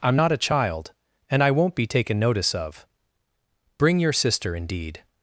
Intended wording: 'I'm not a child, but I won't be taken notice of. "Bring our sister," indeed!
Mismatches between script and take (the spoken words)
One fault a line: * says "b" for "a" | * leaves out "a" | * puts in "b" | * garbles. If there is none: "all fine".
* says "and" for "but"
* says "your" for "our"